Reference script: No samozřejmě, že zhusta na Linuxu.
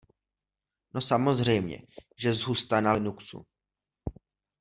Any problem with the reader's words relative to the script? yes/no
no